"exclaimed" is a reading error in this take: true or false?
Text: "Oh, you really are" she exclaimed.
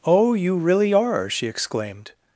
false